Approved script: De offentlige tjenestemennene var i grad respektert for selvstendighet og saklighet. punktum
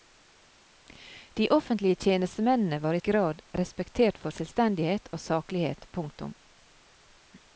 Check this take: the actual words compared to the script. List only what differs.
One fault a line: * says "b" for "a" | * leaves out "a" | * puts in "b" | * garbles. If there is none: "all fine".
all fine